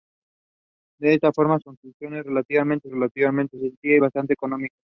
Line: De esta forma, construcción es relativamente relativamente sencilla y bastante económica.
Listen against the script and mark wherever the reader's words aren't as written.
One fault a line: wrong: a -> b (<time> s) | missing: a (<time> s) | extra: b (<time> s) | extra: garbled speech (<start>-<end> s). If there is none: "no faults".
no faults